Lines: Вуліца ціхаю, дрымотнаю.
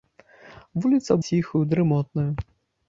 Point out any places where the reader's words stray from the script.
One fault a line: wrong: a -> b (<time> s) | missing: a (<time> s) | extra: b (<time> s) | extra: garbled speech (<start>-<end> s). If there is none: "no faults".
no faults